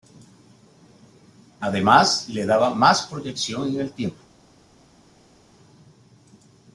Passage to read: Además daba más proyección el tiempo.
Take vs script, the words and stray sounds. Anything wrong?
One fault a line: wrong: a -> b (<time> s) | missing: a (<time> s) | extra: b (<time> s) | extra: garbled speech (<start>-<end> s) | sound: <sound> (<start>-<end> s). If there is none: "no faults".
extra: le (2.3 s)
extra: en (3.7 s)